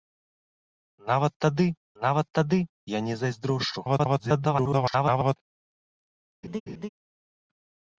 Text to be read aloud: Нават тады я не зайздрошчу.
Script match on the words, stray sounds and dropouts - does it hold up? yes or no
no